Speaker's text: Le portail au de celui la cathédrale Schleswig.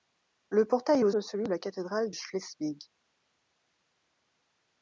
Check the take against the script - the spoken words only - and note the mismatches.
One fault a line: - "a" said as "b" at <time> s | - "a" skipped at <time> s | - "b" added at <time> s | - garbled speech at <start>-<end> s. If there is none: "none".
none